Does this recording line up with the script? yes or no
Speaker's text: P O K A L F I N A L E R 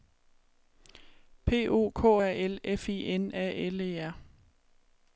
yes